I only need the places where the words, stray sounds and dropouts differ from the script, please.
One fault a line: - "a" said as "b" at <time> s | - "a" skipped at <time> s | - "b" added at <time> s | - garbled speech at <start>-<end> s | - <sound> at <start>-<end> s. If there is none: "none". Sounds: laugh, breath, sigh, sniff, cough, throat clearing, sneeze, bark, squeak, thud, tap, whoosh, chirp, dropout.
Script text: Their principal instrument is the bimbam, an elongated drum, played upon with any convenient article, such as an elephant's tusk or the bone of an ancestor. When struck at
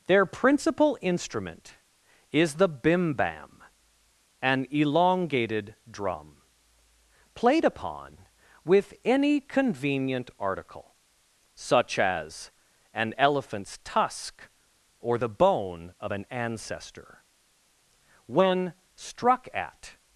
none